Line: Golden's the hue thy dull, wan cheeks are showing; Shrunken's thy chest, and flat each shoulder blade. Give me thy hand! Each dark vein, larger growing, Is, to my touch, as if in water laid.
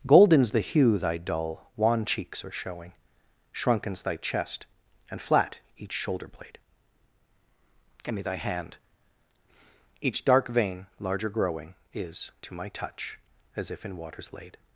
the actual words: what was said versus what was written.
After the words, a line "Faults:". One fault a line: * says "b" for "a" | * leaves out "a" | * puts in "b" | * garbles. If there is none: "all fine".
Golden's the hue thy dull, wan cheeks are showing; Shrunken's thy chest, and flat each shoulder blade. Give me thy hand! Each dark vein, larger growing, Is, to my touch, as if in waters laid.
Faults:
* says "waters" for "water"